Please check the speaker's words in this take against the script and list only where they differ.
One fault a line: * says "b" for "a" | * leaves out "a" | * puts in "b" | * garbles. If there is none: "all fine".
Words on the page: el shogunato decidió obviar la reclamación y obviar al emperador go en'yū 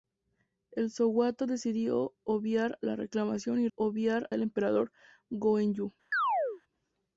all fine